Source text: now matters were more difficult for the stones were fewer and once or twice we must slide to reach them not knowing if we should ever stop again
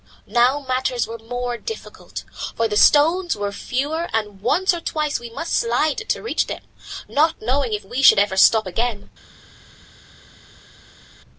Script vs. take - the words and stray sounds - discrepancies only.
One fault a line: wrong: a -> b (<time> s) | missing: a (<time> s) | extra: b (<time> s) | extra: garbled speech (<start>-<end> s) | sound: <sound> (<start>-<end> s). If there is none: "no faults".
no faults